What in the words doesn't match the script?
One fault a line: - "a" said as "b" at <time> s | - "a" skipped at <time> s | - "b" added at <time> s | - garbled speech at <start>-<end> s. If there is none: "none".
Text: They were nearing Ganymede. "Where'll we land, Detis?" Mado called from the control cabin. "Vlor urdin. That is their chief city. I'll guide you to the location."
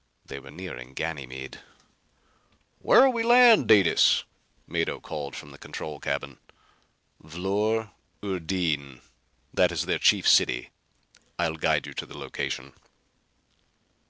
none